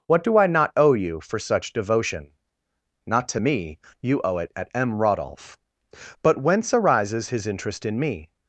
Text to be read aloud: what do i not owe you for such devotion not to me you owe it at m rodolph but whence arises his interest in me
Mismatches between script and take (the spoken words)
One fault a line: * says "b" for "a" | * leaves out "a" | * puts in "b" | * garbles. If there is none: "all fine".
all fine